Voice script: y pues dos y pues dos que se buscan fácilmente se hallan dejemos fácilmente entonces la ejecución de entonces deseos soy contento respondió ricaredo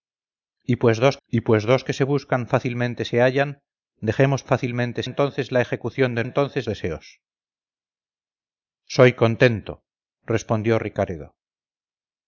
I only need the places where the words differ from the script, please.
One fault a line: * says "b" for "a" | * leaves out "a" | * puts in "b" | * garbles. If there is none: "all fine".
all fine